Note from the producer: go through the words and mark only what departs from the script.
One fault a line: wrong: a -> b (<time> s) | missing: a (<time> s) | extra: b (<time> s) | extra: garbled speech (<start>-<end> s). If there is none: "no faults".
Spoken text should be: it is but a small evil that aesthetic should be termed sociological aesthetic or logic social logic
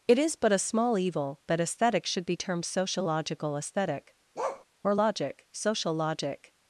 no faults